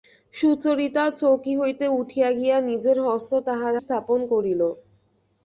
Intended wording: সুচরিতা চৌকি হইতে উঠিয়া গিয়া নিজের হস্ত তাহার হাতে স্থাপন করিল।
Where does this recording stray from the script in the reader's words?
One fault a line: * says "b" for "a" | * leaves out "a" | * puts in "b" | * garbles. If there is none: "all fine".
* leaves out "হাতে"